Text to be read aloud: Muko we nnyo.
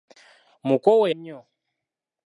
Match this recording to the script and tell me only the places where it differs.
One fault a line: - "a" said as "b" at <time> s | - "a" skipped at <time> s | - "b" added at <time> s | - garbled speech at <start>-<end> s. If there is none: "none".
none